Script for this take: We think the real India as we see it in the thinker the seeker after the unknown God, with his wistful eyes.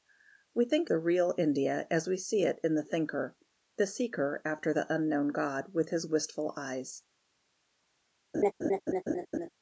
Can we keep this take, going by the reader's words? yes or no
yes